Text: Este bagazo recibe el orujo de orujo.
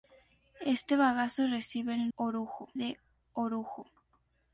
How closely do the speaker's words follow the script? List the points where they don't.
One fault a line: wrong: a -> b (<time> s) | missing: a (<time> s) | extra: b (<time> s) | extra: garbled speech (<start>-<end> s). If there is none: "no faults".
no faults